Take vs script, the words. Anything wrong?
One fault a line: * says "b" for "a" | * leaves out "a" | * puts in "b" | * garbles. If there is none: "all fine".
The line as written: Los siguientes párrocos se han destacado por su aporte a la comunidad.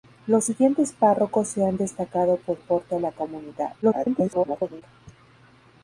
* leaves out "su"
* garbles